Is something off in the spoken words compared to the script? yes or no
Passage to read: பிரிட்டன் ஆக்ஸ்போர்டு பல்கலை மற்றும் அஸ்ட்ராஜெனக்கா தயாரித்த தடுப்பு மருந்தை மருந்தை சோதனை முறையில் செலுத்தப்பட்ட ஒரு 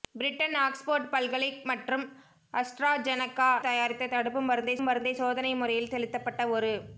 no